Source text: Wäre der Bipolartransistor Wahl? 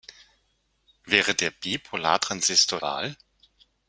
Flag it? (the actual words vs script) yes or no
no